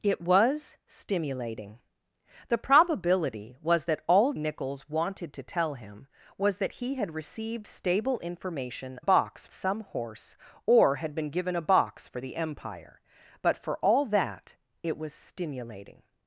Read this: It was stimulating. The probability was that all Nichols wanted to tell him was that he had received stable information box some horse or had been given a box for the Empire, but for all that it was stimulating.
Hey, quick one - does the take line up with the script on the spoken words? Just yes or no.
yes